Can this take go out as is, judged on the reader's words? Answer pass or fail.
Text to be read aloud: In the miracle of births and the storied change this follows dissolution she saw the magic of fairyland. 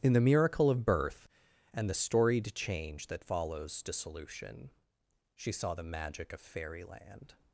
fail